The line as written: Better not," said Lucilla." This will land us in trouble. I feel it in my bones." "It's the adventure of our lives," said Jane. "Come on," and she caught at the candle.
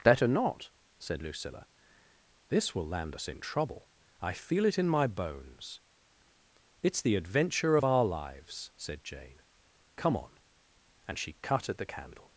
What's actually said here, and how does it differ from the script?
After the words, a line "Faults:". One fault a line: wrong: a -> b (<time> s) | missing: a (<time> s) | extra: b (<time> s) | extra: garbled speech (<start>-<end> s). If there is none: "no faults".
Better not," said Lucilla." This will land us in trouble. I feel it in my bones." "It's the adventure of our lives," said Jane. "Come on," and she cut at the candle.
Faults:
wrong: caught -> cut (11.4 s)